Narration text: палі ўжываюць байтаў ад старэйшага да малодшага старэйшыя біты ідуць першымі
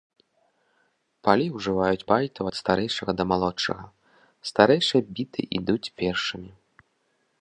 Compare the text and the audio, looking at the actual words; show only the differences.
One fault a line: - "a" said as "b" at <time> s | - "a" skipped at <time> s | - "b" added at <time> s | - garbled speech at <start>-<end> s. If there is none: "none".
none